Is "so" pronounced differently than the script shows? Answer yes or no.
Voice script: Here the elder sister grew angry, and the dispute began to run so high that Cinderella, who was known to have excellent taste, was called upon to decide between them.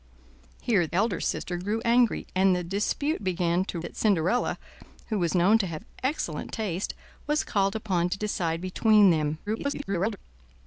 yes